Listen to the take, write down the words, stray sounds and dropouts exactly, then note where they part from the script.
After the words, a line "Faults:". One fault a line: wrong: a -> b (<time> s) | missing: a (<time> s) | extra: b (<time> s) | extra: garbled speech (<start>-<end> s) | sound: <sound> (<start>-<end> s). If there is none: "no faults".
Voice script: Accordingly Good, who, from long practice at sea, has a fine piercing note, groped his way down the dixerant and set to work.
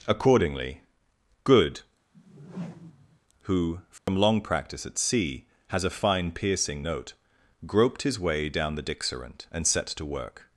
Accordingly Good, who, from long practice at sea, has a fine piercing note, groped his way down the dixerant and set to work.
Faults:
sound: whoosh (2.1-3.2 s)
sound: dropout (4.0-4.1 s)